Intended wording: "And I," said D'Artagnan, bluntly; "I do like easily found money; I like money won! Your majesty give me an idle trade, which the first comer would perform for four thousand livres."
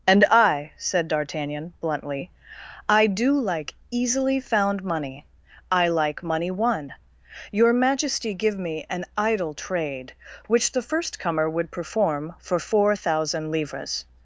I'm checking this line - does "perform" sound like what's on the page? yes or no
yes